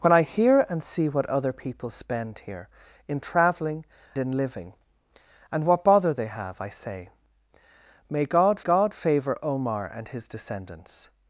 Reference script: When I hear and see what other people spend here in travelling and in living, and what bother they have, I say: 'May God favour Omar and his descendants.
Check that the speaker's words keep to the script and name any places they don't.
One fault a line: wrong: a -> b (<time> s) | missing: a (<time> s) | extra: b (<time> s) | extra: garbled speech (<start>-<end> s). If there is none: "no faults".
missing: and (3.9 s)
extra: God (8.6 s)